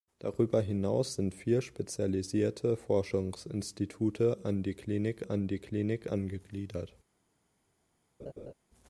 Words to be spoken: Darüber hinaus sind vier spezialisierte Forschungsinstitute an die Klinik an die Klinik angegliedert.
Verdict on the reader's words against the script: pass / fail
pass